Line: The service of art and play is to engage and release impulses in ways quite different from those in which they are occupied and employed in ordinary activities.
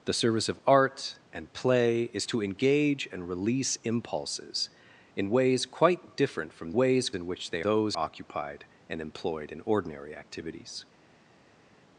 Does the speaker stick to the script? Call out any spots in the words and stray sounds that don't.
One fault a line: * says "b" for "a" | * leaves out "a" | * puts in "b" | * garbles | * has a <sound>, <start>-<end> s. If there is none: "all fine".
* says "ways" for "those"
* says "those" for "are"